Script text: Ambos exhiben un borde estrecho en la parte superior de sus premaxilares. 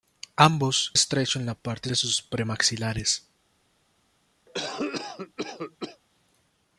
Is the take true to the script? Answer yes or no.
no